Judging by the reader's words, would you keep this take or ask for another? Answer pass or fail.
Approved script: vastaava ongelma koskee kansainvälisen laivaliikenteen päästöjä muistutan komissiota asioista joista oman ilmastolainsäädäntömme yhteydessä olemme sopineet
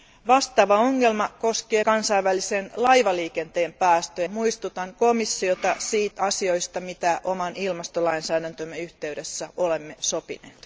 pass